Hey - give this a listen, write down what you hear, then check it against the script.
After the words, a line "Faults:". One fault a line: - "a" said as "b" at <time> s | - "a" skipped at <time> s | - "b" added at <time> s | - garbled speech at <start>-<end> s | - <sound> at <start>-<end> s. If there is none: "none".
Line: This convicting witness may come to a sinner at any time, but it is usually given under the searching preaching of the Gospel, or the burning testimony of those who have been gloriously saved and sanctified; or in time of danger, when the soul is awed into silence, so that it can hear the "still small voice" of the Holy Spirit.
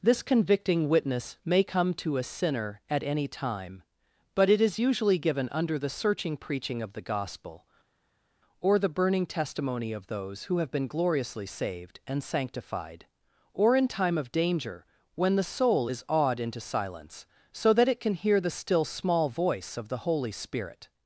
This convicting witness may come to a sinner at any time, but it is usually given under the searching preaching of the Gospel, or the burning testimony of those who have been gloriously saved and sanctified; or in time of danger, when the soul is awed into silence, so that it can hear the "still small voice" of the Holy Spirit.
Faults:
none